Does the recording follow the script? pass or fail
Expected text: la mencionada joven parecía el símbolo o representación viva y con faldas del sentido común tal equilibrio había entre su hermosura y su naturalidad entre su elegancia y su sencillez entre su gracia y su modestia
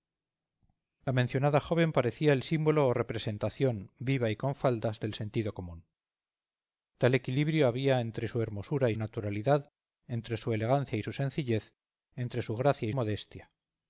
fail